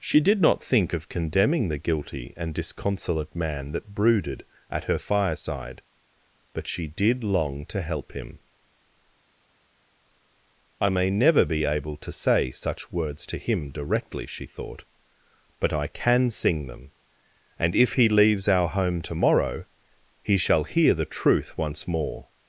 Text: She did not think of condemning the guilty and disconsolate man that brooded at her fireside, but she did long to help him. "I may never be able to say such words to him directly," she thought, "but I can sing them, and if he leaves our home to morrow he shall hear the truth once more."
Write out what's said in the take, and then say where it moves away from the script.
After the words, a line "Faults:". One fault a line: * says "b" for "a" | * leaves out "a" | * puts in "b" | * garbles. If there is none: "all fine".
She did not think of condemning the guilty and disconsolate man that brooded at her fireside, but she did long to help him. "I may never be able to say such words to him directly," she thought, "but I can sing them, and if he leaves our home to morrow he shall hear the truth once more."
Faults:
all fine